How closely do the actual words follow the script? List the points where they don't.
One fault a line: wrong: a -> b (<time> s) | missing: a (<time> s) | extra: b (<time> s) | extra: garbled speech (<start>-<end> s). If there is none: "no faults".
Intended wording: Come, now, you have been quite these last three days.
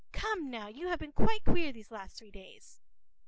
extra: queer (1.4 s)